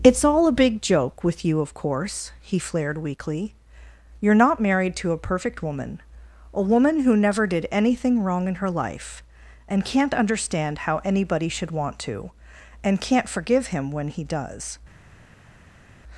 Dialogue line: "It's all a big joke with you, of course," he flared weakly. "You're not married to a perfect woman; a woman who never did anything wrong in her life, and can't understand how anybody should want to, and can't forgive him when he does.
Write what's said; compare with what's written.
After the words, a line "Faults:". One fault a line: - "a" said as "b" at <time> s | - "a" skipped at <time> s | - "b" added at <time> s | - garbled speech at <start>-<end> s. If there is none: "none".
"It's all a big joke with you, of course," he flared weakly. "You're not married to a perfect woman; a woman who never did anything wrong in her life, and can't understand how anybody should want to, and can't forgive him when he does.
Faults:
none